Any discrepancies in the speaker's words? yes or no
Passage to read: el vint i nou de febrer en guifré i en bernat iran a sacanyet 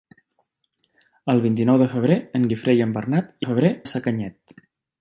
yes